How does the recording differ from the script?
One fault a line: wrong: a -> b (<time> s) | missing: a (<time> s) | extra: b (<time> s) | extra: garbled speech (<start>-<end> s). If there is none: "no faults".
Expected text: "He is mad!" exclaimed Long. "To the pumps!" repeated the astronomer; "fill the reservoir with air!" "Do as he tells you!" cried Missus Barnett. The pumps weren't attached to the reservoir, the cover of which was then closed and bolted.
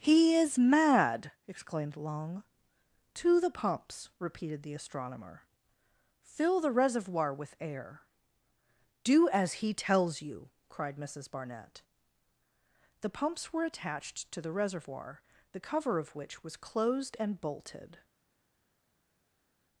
wrong: weren't -> were (13.5 s)
missing: then (16.6 s)